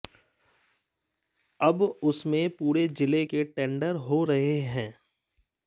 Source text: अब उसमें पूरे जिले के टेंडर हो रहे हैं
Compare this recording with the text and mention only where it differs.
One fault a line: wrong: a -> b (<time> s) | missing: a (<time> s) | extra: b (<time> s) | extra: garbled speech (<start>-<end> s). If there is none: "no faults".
no faults